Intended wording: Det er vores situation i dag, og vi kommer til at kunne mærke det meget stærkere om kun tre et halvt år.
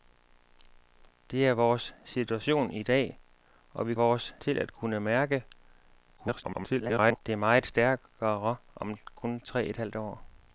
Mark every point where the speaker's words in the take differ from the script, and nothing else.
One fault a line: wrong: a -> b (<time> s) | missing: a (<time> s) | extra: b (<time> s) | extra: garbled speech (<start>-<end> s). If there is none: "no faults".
wrong: kommer -> vores (3.9 s)
extra: garbled speech (6.2-7.2 s)